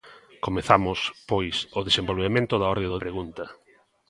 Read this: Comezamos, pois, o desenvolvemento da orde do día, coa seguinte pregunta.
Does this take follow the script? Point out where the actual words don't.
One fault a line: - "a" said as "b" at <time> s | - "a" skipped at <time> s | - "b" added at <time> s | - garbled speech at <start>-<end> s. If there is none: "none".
- "día coa seguinte" skipped at 3.0 s